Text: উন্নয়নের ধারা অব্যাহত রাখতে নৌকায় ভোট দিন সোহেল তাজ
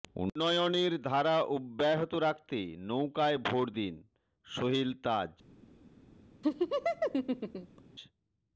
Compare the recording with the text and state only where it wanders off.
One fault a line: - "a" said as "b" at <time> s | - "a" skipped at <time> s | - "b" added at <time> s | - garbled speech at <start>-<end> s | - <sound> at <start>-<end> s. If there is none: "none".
- laugh at 6.4-7.8 s